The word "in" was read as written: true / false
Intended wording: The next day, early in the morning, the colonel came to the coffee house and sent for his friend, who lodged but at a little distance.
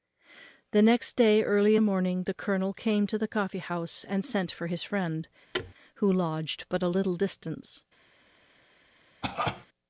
false